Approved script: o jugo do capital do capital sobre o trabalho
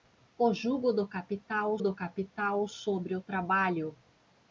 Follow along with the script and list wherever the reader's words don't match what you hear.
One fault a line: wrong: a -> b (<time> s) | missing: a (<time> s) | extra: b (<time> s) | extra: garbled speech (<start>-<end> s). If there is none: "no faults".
no faults